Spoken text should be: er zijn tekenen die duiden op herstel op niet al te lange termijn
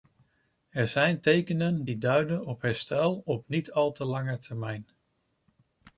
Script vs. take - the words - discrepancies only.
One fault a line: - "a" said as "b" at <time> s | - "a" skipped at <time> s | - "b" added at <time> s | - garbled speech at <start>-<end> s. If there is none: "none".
none